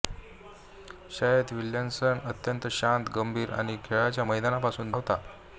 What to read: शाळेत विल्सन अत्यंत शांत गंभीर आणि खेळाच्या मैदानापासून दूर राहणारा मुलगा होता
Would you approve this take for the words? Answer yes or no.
no